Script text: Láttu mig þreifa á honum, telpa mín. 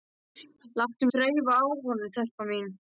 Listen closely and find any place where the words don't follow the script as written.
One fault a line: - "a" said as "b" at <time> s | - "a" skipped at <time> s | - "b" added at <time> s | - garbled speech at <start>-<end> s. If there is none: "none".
- "mig" skipped at 1.0 s